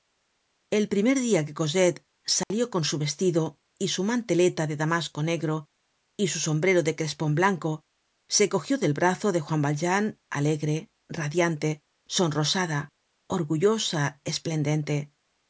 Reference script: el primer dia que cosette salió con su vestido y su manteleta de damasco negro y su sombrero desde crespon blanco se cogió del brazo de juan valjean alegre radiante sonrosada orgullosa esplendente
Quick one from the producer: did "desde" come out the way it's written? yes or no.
no